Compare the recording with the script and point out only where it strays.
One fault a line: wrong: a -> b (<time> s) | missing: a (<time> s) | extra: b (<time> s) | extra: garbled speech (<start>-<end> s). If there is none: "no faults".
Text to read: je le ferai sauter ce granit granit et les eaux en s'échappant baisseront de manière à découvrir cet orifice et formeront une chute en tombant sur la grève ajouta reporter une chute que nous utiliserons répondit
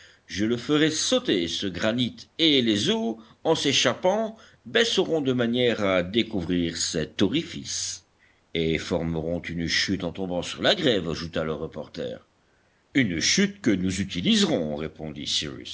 missing: granit (2.3 s)
extra: le (11.4 s)